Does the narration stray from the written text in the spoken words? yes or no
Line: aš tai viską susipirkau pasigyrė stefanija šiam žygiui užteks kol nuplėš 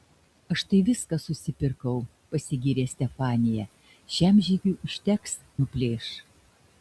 yes